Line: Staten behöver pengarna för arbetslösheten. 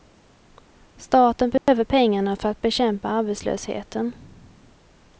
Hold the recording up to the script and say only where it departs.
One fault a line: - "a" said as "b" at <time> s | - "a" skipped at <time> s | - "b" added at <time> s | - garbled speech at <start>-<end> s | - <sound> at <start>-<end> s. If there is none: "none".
- dropout at 1.6-1.7 s
- "att bekämpa" added at 2.5 s